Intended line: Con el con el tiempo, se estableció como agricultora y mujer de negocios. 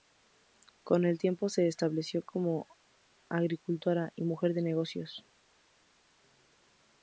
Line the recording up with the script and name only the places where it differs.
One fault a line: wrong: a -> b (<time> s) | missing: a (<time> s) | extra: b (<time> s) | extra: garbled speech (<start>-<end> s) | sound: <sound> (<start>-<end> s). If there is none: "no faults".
missing: con el (1.2 s)